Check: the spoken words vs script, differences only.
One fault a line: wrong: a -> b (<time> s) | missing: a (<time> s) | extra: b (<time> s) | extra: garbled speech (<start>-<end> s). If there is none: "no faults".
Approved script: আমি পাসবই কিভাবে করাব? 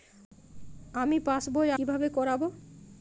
no faults